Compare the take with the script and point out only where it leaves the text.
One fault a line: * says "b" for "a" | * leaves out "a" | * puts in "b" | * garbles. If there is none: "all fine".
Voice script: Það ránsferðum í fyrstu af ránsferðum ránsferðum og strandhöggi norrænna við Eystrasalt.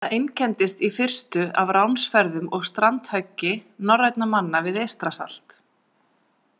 * says "einkenndist" for "ránsferðum"
* leaves out "ránsferðum"
* puts in "manna"